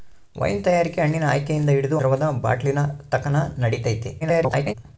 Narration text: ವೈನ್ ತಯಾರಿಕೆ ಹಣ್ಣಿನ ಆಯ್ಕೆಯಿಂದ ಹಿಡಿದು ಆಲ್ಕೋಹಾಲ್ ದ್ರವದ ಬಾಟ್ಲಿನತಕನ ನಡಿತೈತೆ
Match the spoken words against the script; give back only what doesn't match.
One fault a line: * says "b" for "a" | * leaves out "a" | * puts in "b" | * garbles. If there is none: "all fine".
* leaves out "ಆಲ್ಕೋಹಾಲ್"
* garbles